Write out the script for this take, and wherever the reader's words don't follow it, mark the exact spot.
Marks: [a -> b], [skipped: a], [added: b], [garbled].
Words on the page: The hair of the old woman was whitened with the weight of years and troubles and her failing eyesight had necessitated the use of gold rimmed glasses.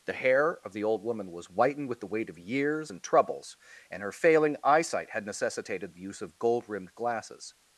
The hair of the old woman was whitened with the weight of years and troubles and her failing eyesight had necessitated the use of gold rimmed glasses.